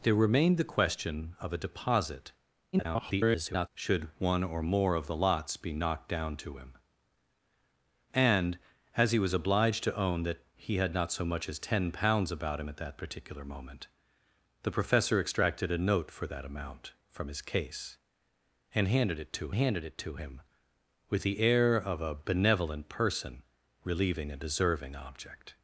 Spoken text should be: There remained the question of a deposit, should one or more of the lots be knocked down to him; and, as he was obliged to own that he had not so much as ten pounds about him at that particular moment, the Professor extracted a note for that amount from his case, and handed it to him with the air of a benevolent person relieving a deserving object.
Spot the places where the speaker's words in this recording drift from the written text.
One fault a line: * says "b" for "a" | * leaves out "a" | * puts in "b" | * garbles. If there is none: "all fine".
* garbles
* puts in "handed it to"